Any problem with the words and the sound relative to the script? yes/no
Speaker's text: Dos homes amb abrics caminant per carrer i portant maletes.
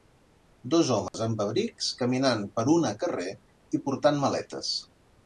yes